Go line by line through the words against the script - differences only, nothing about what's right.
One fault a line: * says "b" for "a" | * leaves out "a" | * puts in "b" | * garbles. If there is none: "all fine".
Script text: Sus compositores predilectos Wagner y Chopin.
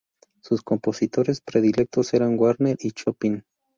* puts in "eran"